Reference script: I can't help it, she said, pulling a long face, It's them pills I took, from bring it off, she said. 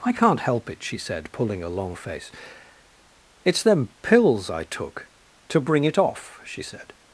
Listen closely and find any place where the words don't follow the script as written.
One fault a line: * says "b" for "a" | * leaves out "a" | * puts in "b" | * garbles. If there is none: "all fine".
* says "to" for "from"